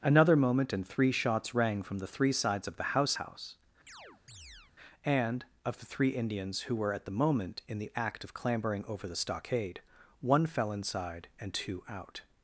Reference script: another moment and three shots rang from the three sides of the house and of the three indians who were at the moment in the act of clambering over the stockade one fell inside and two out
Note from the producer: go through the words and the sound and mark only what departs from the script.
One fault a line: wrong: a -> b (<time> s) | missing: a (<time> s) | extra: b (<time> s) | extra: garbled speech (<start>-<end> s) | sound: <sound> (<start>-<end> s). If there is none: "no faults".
extra: house (3.1 s)
sound: chirp (3.9-4.7 s)